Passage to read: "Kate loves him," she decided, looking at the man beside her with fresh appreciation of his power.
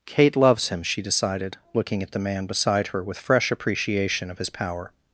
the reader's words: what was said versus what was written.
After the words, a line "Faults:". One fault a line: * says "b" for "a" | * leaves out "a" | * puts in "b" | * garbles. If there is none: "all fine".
"Kate loves him," she decided, looking at the man beside her with fresh appreciation of his power.
Faults:
all fine